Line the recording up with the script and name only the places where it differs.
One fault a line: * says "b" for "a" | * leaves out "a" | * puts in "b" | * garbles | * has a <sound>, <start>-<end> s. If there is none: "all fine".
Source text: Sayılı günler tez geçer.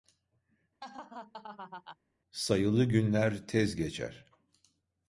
* has a laugh, 0.8-2.0 s